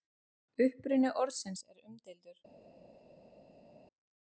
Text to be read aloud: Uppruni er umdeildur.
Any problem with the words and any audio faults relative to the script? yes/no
yes